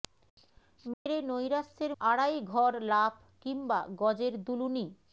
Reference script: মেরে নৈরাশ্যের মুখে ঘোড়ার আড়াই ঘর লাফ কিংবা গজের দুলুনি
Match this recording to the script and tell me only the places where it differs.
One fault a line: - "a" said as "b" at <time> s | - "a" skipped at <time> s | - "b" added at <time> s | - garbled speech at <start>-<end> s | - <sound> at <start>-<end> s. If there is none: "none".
- dropout at 0.9-1.1 s
- "মুখে ঘোড়ার" skipped at 1.9 s